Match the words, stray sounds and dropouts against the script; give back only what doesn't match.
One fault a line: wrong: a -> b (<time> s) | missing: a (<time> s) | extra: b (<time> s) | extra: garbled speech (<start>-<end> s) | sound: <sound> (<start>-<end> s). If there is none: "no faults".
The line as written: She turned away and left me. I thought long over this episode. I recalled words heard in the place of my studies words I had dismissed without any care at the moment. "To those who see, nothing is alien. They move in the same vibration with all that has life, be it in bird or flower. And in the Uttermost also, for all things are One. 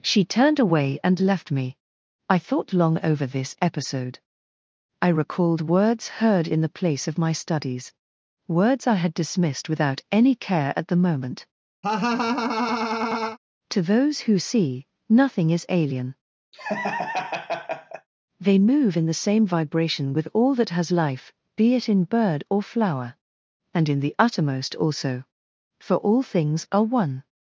sound: laugh (11.8-13.4 s)
sound: laugh (16.5-18.1 s)